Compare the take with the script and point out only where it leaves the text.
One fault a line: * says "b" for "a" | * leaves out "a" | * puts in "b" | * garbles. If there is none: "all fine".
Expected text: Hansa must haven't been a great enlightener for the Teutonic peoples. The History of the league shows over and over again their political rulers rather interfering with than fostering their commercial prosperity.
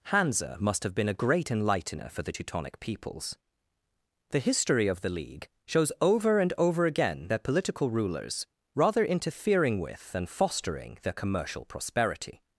* says "have" for "haven't"